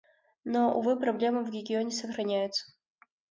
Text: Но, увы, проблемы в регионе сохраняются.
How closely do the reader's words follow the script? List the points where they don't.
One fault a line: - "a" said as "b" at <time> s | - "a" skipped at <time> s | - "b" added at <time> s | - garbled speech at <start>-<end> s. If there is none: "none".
none